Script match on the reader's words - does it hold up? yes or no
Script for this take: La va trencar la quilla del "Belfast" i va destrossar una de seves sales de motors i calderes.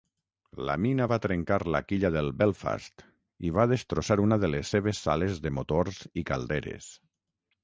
no